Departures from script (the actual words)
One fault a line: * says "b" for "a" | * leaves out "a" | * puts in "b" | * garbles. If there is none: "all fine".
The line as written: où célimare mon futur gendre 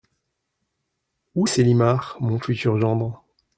all fine